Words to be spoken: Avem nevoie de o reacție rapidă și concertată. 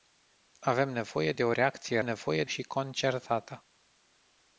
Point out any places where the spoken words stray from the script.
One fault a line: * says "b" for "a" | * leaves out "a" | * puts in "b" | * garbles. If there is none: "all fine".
* says "nevoie" for "rapidă"